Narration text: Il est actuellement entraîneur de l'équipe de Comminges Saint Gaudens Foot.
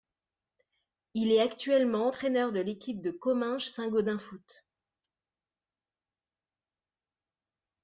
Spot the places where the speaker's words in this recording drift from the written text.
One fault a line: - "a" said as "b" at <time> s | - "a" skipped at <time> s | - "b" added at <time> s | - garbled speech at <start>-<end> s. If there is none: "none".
none